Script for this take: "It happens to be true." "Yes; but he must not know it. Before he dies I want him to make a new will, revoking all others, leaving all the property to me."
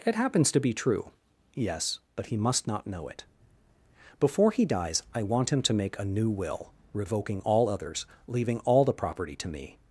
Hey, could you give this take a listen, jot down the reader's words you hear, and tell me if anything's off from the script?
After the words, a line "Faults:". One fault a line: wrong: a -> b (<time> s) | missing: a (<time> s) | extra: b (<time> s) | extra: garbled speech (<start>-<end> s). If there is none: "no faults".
"It happens to be true." "Yes; but he must not know it. Before he dies I want him to make a new will, revoking all others, leaving all the property to me."
Faults:
no faults